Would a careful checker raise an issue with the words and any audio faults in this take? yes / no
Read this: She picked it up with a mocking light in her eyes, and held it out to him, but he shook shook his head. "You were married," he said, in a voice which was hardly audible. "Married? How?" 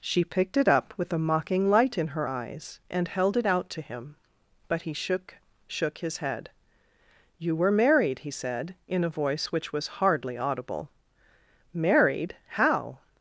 no